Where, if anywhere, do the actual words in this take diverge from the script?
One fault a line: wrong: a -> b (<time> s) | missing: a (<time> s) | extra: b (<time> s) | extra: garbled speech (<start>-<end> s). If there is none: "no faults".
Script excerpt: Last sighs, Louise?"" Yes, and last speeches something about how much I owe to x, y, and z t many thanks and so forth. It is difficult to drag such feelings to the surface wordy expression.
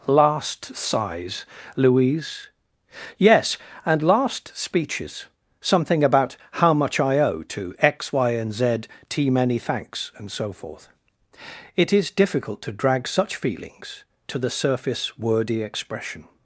no faults